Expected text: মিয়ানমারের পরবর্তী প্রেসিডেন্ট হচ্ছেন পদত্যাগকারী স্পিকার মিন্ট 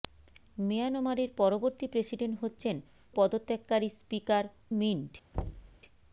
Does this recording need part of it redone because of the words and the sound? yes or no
yes